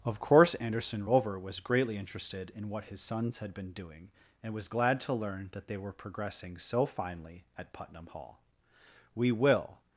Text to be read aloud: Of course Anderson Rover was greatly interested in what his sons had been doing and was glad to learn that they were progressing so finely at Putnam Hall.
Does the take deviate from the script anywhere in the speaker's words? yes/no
yes